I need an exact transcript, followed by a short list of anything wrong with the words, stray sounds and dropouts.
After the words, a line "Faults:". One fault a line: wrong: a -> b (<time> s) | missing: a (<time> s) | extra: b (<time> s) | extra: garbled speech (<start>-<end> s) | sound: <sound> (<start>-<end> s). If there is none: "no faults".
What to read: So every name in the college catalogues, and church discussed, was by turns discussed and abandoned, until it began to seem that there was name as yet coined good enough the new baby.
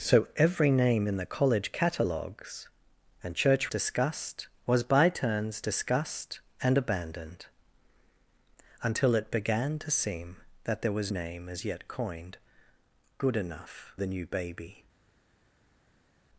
So every name in the college catalogues, and church discussed, was by turns discussed and abandoned, until it began to seem that there was name as yet coined good enough the new baby.
Faults:
no faults